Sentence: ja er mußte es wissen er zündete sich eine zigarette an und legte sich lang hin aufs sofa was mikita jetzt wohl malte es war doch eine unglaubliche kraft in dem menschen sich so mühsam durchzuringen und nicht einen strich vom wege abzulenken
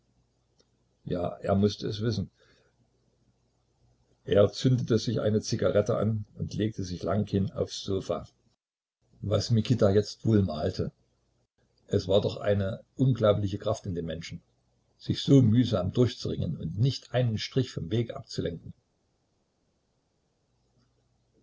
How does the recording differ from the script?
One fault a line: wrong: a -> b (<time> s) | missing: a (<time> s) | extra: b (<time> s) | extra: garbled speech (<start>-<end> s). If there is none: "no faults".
no faults